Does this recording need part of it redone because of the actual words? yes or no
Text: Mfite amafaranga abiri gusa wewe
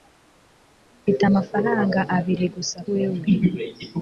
no